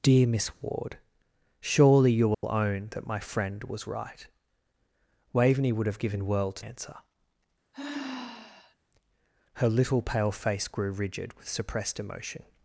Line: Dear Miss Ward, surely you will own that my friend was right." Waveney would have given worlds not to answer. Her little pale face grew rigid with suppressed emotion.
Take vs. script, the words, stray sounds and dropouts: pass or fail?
fail